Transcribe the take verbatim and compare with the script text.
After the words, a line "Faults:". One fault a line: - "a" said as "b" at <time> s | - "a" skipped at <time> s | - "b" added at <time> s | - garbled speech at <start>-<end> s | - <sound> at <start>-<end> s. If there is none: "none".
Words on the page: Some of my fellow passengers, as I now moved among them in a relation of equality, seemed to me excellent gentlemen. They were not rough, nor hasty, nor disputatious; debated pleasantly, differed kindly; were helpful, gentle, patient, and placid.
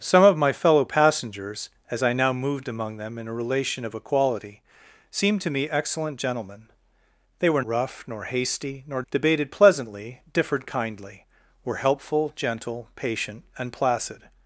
Some of my fellow passengers, as I now moved among them in a relation of equality, seemed to me excellent gentlemen. They were rough, nor hasty, nor; debated pleasantly, differed kindly; were helpful, gentle, patient, and placid.
Faults:
- "not" skipped at 7.6 s
- "disputatious" skipped at 9.0 s